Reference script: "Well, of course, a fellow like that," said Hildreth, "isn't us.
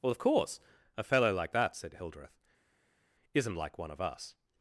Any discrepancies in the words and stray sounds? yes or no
yes